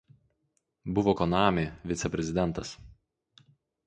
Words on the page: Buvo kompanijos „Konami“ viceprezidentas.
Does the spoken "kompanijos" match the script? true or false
false